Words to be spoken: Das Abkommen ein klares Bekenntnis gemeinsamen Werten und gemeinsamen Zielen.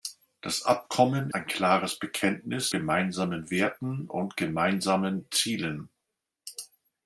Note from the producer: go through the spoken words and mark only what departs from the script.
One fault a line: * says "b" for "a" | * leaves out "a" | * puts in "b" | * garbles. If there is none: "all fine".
all fine